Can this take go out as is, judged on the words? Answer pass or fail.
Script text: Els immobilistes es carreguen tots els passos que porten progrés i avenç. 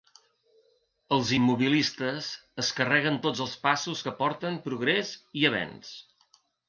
pass